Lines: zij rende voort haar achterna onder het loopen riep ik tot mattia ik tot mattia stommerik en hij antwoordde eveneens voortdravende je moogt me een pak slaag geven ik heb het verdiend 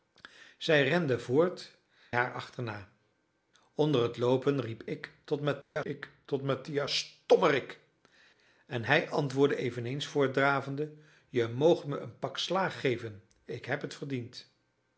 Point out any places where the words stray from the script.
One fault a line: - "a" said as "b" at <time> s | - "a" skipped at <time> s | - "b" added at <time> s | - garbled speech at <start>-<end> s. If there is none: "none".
none